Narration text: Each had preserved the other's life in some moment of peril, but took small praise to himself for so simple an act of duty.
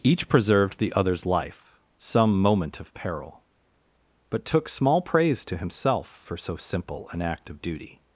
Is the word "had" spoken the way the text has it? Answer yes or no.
no